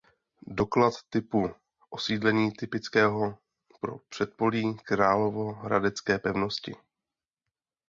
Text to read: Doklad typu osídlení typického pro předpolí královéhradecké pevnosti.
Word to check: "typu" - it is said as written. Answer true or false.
true